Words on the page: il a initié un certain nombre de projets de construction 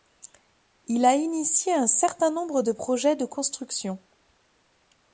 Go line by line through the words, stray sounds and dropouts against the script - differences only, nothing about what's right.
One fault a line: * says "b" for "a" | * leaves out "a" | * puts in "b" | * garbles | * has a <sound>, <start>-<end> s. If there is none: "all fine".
all fine